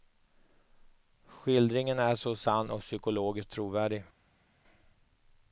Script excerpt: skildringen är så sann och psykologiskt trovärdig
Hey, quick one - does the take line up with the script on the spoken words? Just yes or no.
yes